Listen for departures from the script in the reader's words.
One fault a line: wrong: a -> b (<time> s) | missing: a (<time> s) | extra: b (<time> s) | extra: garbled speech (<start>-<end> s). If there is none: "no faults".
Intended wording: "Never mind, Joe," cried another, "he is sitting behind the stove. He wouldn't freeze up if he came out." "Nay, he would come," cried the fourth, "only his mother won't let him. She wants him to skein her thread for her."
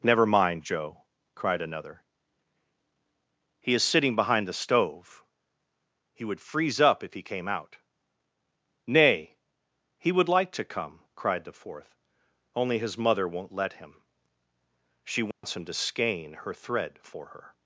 wrong: wouldn't -> would (6.2 s)
extra: like to (10.3 s)